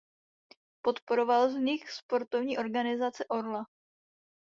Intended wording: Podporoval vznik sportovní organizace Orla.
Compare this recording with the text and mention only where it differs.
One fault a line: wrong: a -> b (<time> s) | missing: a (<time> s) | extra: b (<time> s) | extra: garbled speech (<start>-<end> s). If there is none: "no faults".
no faults